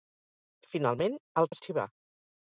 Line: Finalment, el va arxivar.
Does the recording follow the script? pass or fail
pass